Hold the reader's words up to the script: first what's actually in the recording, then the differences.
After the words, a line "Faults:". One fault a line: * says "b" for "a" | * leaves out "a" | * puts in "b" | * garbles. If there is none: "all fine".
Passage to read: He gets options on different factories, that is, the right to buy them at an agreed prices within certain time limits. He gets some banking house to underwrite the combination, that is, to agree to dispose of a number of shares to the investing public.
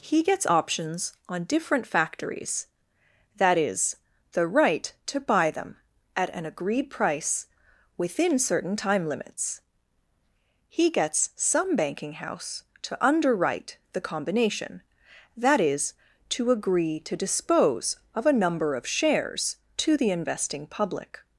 He gets options on different factories, that is, the right to buy them at an agreed price within certain time limits. He gets some banking house to underwrite the combination, that is, to agree to dispose of a number of shares to the investing public.
Faults:
* says "price" for "prices"